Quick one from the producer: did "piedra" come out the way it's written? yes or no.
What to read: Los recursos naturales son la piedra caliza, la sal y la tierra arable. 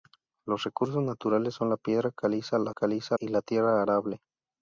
yes